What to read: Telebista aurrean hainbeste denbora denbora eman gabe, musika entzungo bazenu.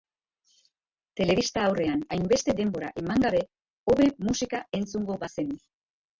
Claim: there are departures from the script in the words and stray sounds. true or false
true